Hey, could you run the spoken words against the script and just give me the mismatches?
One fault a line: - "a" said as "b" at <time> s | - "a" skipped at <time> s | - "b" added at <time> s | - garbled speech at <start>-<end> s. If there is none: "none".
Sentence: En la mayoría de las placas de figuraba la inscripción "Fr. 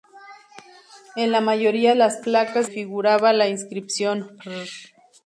- "de" skipped at 1.9 s
- "de" skipped at 2.7 s